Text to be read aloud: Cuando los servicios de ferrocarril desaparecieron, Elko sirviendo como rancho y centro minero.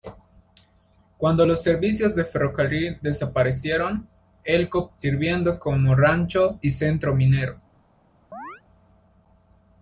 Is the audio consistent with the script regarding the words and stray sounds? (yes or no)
no